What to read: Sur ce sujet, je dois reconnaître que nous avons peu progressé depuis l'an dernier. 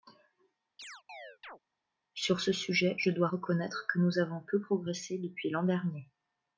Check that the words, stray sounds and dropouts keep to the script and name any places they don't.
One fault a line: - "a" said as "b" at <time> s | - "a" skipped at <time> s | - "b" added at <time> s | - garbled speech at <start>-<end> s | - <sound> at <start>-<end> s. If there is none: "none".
- chirp at 0.8-1.6 s